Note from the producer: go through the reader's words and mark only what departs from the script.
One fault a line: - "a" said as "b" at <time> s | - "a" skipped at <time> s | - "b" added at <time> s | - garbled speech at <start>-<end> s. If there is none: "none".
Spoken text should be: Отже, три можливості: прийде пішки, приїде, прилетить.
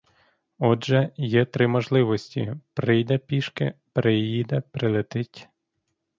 - "є" added at 1.2 s